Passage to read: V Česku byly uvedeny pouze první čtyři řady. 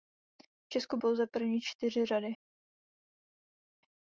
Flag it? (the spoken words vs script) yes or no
yes